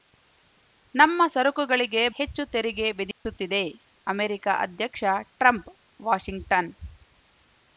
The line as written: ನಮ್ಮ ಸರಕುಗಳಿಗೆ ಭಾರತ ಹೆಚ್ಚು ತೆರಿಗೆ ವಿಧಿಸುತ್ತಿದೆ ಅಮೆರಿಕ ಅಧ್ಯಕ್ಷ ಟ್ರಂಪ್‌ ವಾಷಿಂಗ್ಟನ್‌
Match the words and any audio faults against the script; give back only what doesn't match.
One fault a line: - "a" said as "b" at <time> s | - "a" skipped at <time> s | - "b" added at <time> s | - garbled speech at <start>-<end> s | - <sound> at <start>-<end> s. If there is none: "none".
- "ಭಾರತ" skipped at 2.0 s
- dropout at 3.1-3.3 s